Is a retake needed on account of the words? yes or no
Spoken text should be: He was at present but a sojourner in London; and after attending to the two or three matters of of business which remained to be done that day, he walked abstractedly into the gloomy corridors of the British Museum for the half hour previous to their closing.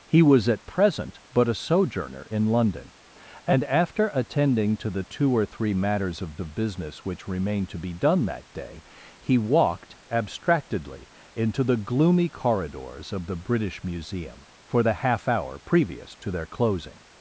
no